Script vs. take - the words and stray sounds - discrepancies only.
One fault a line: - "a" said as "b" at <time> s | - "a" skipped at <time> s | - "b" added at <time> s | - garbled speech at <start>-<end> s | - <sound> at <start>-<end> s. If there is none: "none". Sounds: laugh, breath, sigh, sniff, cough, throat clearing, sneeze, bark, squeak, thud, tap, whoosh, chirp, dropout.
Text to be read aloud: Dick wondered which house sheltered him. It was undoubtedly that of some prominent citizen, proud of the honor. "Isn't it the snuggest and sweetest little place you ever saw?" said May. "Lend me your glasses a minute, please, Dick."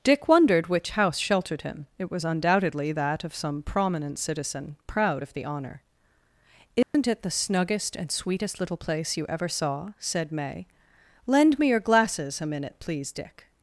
- dropout at 6.8-6.9 s